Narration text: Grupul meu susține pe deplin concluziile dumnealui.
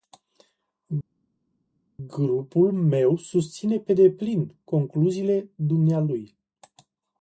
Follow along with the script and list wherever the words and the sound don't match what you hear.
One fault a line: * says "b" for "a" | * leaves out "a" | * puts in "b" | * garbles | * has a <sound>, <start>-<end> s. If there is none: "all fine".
all fine